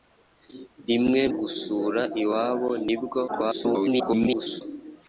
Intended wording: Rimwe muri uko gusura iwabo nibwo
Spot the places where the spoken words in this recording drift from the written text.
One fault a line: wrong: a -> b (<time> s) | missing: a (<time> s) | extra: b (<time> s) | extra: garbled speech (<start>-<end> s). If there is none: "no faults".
missing: muri uko (1.2 s)
extra: garbled speech (3.3-4.6 s)